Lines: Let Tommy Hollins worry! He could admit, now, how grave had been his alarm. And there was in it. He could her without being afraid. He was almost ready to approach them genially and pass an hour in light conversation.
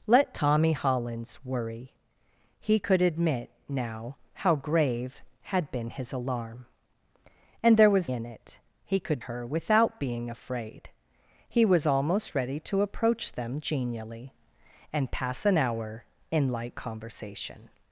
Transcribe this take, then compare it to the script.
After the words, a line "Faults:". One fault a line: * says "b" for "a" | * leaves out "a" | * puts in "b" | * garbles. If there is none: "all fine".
Let Tommy Hollins worry! He could admit, now, how grave had been his alarm. And there was in it. He could her without being afraid. He was almost ready to approach them genially and pass an hour in light conversation.
Faults:
all fine